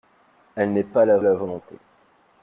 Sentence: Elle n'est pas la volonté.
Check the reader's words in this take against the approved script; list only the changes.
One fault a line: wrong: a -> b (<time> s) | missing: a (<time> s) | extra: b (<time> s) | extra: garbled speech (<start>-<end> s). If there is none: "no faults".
extra: la (1.2 s)